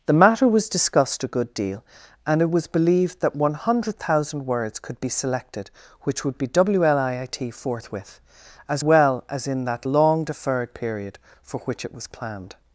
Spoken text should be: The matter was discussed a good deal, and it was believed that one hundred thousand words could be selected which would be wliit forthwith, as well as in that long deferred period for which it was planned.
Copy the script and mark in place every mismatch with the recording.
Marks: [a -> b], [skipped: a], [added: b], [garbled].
The matter was discussed a good deal, and it was believed that one hundred thousand words could be selected which would be wliit forthwith, as well as in that long deferred period for which it was planned.